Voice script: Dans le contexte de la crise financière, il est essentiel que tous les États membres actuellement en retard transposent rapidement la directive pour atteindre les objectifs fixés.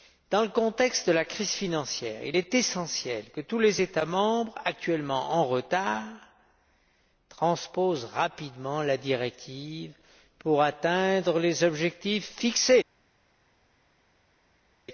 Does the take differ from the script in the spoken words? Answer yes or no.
no